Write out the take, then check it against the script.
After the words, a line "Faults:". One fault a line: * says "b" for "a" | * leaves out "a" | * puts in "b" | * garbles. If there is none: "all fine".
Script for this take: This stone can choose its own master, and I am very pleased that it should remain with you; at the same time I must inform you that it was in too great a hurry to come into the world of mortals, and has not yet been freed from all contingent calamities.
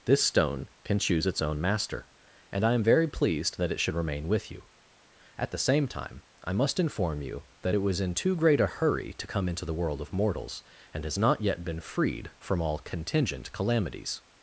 This stone can choose its own master, and I am very pleased that it should remain with you; at the same time I must inform you that it was in too great a hurry to come into the world of mortals, and has not yet been freed from all contingent calamities.
Faults:
all fine